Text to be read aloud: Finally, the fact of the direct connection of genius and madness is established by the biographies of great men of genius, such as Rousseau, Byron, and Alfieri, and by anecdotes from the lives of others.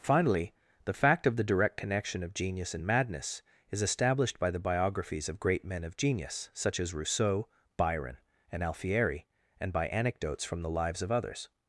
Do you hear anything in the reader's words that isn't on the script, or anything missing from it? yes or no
no